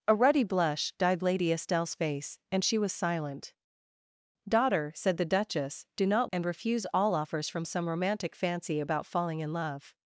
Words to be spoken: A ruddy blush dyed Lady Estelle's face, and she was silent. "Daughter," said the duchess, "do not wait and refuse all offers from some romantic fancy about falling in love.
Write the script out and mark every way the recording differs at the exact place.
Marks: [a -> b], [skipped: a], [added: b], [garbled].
A ruddy blush dyed Lady Estelle's face, and she was silent. "Daughter," said the duchess, "do not [skipped: wait] and refuse all offers from some romantic fancy about falling in love.